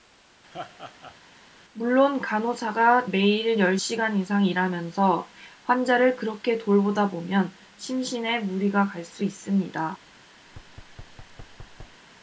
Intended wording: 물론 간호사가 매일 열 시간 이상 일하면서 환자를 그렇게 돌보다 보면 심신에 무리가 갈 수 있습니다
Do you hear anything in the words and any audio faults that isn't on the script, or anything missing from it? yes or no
yes